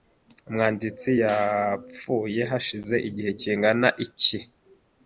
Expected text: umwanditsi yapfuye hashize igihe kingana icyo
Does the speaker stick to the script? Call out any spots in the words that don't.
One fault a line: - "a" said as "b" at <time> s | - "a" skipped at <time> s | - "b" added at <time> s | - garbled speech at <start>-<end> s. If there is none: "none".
- "icyo" said as "iki" at 4.0 s